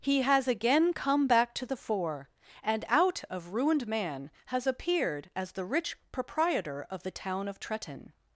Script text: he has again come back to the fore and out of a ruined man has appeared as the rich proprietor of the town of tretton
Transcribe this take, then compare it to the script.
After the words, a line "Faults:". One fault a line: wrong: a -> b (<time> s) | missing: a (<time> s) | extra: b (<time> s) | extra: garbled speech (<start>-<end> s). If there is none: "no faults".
he has again come back to the fore and out of ruined man has appeared as the rich proprietor of the town of tretton
Faults:
missing: a (3.5 s)